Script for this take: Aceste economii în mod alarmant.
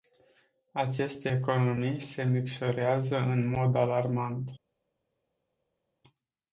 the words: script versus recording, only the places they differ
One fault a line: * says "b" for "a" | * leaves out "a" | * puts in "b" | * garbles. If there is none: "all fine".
* puts in "se micșorează"